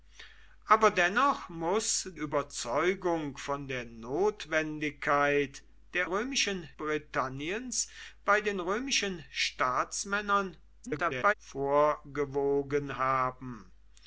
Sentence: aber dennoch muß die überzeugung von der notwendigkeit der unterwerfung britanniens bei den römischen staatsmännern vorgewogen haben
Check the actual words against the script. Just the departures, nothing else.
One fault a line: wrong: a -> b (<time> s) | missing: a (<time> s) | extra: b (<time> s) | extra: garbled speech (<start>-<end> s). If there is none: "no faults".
missing: die (2.1 s)
wrong: unterwerfung -> römischen (6.0 s)
extra: garbled speech (10.8-11.3 s)